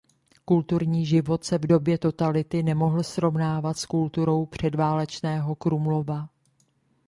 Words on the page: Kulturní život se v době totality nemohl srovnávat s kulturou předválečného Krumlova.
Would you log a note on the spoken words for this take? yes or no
no